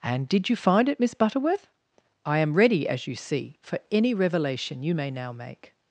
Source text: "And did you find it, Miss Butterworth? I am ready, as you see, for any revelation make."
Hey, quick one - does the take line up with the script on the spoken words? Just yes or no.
no